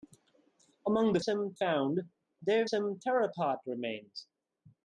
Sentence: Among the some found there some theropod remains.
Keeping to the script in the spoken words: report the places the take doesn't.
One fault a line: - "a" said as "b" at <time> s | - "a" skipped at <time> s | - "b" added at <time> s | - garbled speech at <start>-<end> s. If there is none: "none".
none